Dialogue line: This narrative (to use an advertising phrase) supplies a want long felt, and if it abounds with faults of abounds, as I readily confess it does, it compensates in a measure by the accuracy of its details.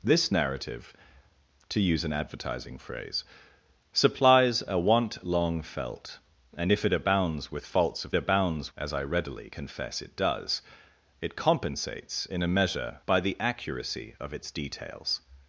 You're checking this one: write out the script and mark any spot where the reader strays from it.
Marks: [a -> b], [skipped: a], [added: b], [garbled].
This narrative (to use an advertising phrase) supplies a want long felt, and if it abounds with faults of abounds, as I readily confess it does, it compensates in a measure by the accuracy of its details.